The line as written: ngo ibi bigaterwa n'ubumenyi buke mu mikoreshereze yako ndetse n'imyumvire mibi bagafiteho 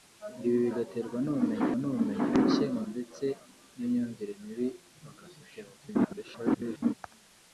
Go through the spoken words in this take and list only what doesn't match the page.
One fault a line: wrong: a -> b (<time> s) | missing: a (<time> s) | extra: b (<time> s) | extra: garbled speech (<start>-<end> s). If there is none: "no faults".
extra: n'ubumenyi (1.8 s)
missing: mikoreshereze yako (2.8 s)
extra: garbled speech (5.8-6.9 s)